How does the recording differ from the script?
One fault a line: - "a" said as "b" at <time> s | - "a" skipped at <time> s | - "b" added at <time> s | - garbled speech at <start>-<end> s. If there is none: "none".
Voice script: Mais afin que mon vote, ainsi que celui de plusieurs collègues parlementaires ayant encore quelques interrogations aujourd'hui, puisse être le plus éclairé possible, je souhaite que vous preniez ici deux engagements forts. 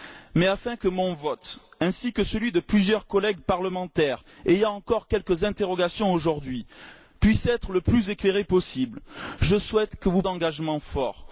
- "preniez ici deux" skipped at 10.2 s